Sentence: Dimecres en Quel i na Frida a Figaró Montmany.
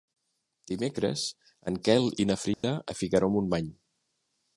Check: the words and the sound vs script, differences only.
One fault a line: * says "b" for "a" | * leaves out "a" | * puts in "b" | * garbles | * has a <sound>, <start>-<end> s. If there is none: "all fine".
* has a dropout, 2.5-2.6 s